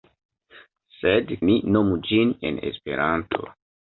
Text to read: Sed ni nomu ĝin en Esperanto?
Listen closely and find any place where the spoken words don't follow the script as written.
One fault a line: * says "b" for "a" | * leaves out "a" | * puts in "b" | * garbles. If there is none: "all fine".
all fine